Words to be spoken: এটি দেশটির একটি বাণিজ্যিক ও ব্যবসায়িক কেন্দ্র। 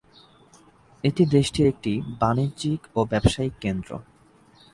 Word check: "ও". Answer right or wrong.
right